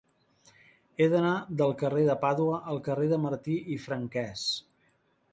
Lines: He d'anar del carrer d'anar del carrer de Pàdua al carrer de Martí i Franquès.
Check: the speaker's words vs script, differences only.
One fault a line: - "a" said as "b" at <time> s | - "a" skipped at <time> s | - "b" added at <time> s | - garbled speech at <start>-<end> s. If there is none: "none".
- "d'anar del carrer" skipped at 2.0 s